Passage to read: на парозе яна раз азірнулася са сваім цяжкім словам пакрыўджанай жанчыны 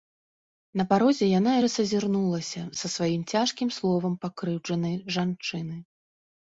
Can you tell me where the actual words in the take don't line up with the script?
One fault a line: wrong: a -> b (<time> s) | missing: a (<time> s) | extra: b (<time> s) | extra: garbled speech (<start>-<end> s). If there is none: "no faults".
no faults